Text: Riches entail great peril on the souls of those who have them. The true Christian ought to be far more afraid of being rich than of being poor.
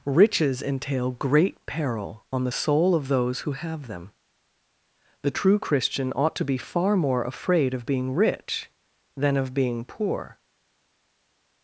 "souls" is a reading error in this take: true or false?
true